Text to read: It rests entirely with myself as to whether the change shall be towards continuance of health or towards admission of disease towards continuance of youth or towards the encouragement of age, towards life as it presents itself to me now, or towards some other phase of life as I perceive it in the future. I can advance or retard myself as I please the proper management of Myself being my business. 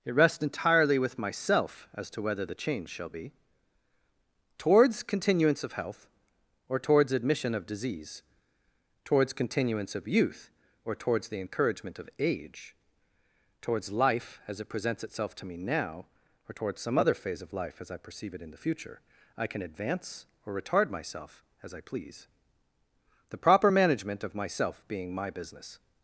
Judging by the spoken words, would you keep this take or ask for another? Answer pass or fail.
pass